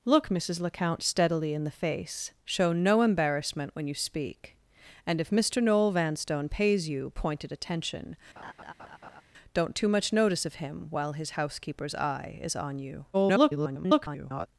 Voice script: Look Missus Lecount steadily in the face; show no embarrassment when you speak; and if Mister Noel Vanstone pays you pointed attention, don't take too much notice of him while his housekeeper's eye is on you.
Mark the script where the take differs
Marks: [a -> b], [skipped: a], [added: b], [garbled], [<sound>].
Look Missus Lecount steadily in the face; show no embarrassment when you speak; and if Mister Noel Vanstone pays you pointed attention, [laugh] don't [skipped: take] too much notice of him while his housekeeper's eye is on you. [garbled]